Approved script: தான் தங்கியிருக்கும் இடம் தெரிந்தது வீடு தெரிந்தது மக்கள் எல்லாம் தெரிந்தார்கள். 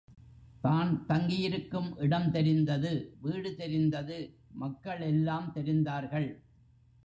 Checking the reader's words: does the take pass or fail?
pass